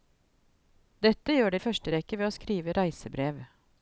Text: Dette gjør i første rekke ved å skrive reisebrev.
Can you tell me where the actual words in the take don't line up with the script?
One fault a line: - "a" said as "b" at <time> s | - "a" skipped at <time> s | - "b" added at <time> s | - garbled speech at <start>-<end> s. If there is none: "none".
none